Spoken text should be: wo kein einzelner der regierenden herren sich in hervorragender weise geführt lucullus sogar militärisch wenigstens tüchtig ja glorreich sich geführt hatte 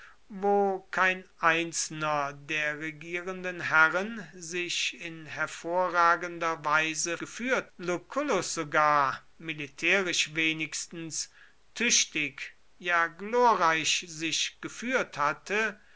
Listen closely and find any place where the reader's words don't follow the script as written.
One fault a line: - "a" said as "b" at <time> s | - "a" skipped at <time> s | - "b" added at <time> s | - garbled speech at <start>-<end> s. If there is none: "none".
none